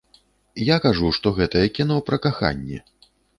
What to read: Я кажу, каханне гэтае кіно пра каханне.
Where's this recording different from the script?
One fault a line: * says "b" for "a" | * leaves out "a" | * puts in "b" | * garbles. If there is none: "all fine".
* says "што" for "каханне"